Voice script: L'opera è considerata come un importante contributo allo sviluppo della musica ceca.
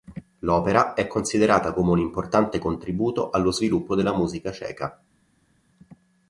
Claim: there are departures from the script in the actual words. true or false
false